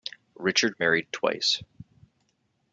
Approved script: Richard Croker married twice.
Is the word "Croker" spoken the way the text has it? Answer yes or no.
no